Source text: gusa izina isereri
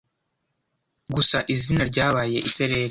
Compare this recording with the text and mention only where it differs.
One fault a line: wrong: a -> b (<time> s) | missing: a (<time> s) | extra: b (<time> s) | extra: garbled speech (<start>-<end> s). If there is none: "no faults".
extra: ryabaye (1.9 s)